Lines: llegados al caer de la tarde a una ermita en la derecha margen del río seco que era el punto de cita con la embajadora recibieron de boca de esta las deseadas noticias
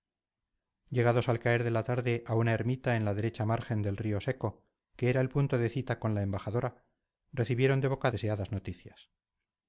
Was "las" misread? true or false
true